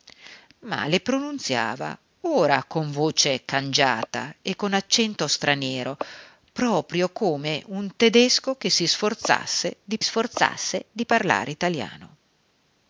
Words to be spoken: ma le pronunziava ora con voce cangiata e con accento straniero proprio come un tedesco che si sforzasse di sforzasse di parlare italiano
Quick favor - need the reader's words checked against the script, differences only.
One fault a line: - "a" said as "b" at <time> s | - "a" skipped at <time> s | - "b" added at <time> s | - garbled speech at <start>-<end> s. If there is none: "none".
none